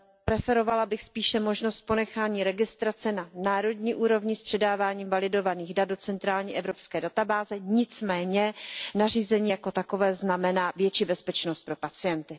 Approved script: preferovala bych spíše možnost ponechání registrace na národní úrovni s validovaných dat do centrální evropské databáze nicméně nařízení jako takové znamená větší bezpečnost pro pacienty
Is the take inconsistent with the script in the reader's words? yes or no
yes